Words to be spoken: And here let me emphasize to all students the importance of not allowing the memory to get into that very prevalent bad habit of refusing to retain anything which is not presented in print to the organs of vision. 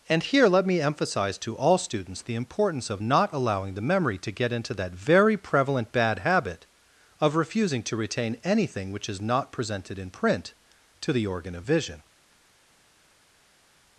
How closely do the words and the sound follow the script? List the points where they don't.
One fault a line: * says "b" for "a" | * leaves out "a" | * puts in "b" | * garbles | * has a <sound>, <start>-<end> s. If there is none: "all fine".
* says "organ" for "organs"